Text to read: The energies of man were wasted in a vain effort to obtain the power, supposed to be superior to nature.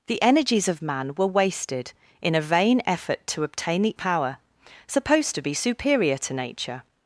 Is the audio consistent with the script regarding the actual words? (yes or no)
yes